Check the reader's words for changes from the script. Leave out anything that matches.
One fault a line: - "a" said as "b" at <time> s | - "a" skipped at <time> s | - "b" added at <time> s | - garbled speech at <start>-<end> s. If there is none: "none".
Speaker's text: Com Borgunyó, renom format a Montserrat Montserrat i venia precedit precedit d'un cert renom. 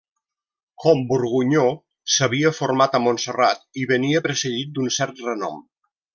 - "renom" said as "s'havia" at 2.1 s
- "Montserrat" skipped at 3.6 s
- "precedit" skipped at 4.7 s